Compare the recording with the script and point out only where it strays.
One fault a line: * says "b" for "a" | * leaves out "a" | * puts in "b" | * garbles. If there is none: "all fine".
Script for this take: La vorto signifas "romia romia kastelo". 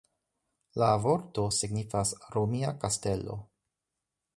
* leaves out "romia"